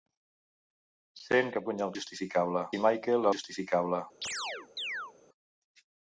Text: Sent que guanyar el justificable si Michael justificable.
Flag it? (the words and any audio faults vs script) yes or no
yes